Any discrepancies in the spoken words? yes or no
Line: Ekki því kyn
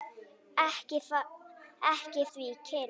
no